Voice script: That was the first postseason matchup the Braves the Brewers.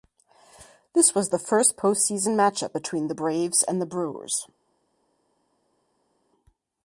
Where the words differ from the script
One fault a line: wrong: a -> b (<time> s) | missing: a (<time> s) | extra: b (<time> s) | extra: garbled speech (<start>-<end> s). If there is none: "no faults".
wrong: That -> This (0.9 s)
extra: between (2.7 s)
extra: and (3.6 s)